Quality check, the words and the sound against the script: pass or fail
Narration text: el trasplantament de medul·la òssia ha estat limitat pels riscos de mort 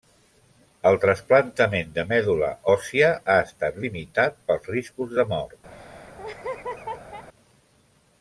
fail